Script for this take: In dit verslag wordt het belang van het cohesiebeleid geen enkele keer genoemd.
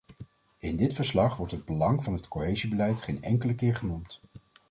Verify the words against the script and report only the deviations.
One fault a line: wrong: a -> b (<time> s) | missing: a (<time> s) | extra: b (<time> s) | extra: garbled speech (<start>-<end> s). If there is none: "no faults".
no faults